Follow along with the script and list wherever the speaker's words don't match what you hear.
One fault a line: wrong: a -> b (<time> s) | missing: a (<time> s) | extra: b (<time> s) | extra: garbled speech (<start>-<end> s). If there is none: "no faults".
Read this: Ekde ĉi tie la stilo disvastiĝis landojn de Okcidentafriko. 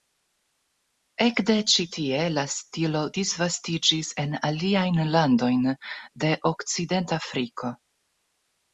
extra: en aliajn (4.3 s)